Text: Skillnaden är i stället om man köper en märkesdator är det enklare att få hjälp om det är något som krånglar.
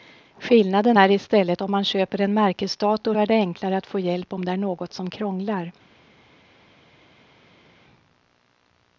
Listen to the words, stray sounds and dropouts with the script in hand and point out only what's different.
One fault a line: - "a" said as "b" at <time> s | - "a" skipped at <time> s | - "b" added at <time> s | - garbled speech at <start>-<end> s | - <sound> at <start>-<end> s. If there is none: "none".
none